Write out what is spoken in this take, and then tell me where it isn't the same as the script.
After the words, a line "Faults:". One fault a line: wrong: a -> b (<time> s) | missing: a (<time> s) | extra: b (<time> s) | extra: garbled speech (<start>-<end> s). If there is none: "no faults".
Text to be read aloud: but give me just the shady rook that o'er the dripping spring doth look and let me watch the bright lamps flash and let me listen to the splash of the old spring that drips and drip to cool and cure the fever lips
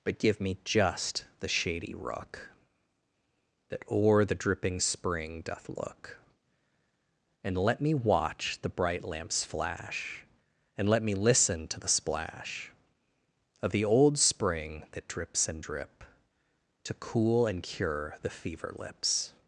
but give me just the shady rook that o'er the dripping spring doth look and let me watch the bright lamps flash and let me listen to the splash of the old spring that drips and drip to cool and cure the fever lips
Faults:
no faults